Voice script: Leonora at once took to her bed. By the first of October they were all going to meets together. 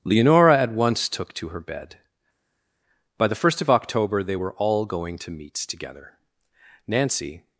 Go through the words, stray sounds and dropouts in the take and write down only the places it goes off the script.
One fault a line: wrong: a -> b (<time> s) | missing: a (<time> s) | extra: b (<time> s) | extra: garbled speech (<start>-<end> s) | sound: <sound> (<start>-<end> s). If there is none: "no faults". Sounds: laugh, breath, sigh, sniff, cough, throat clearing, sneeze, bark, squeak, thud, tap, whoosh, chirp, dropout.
extra: Nancy (6.9 s)